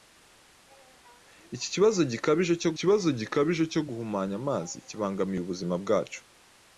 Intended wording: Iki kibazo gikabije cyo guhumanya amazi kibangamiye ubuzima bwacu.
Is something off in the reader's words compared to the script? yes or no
yes